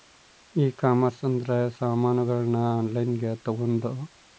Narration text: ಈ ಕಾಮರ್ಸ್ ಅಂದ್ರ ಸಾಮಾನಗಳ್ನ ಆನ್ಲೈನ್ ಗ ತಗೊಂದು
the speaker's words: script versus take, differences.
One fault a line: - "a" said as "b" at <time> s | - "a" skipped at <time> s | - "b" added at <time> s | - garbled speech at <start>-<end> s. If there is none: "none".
none